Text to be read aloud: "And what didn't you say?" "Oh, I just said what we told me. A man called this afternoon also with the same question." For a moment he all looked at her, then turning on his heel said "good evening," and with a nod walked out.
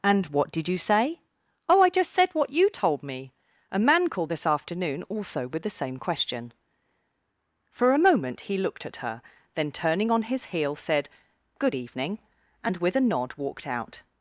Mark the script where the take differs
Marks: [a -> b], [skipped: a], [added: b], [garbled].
"And what [didn't -> did] you say?" "Oh, I just said what [we -> you] told me. A man called this afternoon also with the same question." For a moment he [skipped: all] looked at her, then turning on his heel said "good evening," and with a nod walked out.